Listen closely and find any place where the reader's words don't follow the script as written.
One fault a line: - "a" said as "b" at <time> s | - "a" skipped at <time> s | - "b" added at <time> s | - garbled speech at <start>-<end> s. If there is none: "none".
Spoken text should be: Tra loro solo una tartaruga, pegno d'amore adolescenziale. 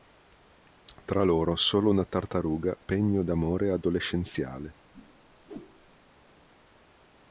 none